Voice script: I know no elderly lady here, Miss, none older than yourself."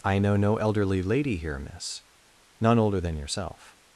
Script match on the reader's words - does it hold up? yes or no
yes